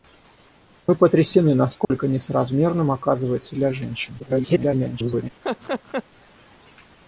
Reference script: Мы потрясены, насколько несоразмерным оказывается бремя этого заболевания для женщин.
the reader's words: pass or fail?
fail